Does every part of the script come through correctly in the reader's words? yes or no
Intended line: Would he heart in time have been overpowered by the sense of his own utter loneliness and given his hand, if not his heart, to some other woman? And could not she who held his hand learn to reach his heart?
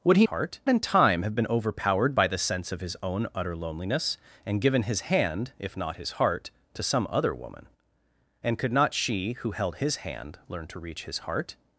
yes